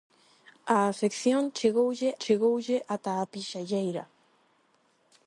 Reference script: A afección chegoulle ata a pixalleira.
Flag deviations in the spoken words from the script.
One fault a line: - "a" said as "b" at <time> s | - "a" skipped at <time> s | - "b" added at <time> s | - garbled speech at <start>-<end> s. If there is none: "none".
- "chegoulle" added at 2.2 s